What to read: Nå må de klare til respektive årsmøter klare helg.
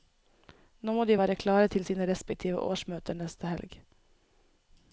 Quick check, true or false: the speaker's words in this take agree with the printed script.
false